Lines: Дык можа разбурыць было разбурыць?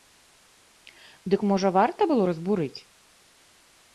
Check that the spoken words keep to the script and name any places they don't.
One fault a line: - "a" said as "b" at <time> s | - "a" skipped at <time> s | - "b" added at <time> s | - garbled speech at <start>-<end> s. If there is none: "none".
- "разбурыць" said as "варта" at 1.8 s